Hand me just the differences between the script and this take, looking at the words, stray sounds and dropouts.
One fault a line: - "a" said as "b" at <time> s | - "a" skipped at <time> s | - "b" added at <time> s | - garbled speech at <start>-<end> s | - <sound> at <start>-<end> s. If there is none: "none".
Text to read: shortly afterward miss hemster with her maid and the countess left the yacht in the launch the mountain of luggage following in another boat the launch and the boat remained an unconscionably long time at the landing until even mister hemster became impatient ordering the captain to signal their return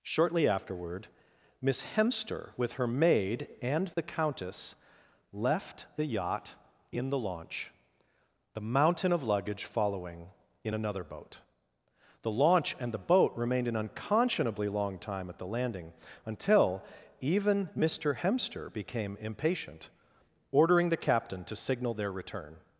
- dropout at 3.9-4.0 s